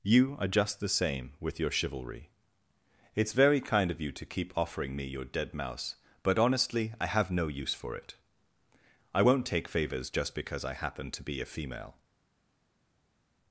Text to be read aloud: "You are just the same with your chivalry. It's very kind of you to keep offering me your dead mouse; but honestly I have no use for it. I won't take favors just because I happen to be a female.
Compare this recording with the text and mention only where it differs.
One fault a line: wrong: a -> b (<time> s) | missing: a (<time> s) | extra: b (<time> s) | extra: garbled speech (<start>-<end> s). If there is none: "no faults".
no faults